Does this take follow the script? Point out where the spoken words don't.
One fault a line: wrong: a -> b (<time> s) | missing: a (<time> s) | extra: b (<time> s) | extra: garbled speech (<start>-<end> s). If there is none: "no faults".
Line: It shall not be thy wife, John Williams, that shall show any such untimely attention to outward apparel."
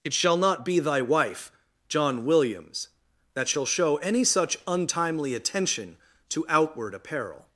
no faults